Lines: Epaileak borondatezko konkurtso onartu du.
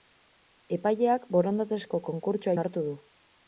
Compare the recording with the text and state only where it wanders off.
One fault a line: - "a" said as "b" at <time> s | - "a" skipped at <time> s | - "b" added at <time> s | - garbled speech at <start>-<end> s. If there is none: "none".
none